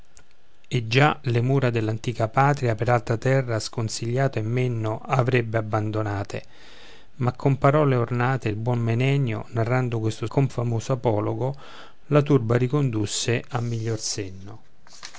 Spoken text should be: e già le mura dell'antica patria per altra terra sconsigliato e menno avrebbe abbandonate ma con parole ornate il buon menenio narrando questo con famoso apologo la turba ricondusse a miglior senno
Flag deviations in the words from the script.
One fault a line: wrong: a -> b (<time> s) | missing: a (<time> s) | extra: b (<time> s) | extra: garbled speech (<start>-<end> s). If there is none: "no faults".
no faults